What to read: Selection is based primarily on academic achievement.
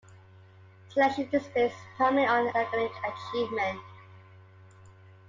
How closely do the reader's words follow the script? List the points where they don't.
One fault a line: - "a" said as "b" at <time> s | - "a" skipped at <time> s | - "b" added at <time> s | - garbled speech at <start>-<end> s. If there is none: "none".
- "on" skipped at 2.5 s